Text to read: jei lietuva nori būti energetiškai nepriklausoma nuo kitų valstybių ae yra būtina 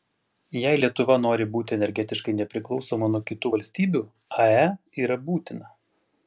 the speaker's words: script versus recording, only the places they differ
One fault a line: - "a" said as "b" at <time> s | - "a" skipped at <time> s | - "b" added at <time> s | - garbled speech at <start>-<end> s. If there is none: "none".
none